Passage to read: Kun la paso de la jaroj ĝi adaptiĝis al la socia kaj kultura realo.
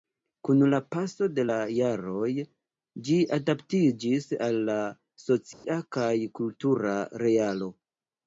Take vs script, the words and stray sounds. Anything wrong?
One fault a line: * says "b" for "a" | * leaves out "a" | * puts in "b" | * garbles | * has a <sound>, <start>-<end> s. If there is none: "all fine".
* has a dropout, 5.5-5.6 s